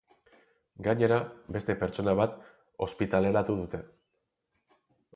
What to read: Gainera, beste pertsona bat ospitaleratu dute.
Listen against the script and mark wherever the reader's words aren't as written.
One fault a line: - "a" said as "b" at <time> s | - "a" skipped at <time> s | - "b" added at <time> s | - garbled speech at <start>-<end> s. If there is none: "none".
none